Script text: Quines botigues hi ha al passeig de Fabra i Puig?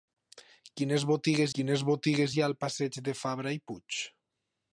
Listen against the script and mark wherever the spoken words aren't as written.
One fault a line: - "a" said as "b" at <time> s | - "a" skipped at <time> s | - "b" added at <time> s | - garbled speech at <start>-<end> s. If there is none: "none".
- "quines botigues" added at 1.6 s